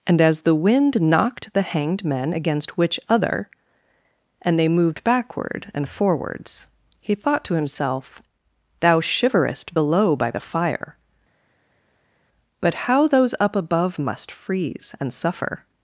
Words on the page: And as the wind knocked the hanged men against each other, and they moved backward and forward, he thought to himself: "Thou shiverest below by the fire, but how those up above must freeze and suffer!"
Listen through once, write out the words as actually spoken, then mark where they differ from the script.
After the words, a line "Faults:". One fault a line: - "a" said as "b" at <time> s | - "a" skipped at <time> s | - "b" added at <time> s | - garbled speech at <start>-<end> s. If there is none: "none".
And as the wind knocked the hanged men against which other, and they moved backward and forwards, he thought to himself: "Thou shiverest below by the fire, but how those up above must freeze and suffer!"
Faults:
- "each" said as "which" at 2.8 s
- "forward" said as "forwards" at 5.9 s